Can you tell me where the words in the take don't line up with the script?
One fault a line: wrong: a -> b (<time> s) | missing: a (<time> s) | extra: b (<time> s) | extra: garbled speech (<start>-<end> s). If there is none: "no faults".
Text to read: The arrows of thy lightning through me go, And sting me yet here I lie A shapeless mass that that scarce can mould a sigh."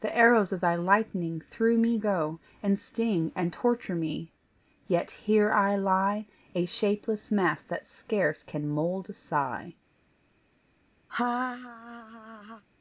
extra: and torture (3.4 s)
missing: that (7.9 s)